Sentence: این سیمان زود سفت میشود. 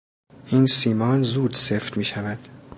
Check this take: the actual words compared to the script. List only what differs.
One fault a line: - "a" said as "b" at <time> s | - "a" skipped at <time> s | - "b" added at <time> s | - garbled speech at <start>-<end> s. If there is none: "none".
none